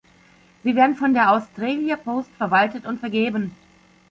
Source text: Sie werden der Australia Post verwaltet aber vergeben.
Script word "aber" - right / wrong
wrong